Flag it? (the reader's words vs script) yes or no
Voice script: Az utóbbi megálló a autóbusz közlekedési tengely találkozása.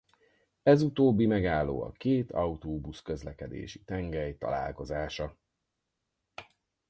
yes